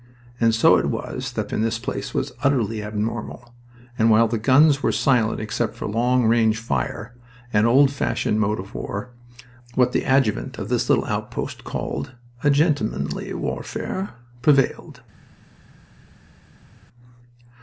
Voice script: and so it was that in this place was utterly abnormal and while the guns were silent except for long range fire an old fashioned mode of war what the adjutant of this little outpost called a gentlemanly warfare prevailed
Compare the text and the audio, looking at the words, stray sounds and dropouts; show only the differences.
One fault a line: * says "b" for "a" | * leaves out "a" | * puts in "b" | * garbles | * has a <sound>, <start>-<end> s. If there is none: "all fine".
all fine